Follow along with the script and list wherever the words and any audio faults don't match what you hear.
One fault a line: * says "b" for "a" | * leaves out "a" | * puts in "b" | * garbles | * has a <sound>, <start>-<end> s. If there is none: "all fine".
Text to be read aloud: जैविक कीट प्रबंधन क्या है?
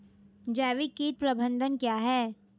all fine